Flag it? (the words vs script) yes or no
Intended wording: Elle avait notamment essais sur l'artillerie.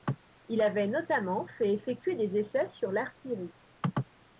yes